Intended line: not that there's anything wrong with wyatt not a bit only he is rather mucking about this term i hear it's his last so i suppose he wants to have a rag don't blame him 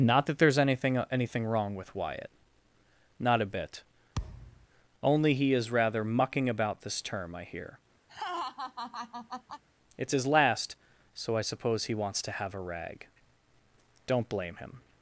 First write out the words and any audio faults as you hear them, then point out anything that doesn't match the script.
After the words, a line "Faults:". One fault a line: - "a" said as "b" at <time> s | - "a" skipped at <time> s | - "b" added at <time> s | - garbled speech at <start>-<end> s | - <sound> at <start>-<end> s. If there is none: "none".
not that there's anything anything wrong with wyatt not a bit only he is rather mucking about this term i hear it's his last so i suppose he wants to have a rag don't blame him
Faults:
- "anything" added at 1.1 s
- thud at 4.1-4.7 s
- laugh at 8.1-9.6 s